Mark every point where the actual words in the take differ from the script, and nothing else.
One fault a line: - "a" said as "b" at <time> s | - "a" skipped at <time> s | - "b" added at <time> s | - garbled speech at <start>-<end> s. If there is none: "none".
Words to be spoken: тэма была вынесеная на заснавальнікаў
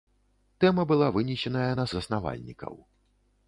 none